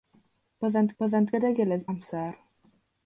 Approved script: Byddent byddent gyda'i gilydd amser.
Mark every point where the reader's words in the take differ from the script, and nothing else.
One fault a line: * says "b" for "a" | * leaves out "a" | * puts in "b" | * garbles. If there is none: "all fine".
all fine